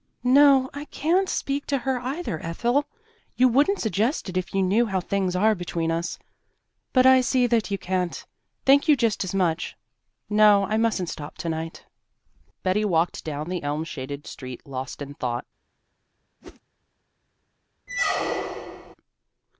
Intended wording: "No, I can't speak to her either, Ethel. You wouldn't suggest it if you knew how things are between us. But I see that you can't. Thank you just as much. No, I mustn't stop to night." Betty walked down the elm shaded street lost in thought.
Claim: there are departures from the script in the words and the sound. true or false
true